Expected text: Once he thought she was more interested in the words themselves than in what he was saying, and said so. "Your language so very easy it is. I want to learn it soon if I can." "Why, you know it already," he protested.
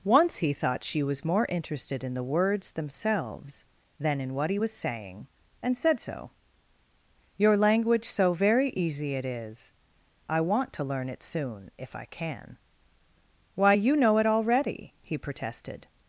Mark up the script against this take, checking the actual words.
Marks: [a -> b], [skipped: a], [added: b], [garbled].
Once he thought she was more interested in the words themselves than in what he was saying, and said so. "Your language so very easy it is. I want to learn it soon if I can." "Why, you know it already," he protested.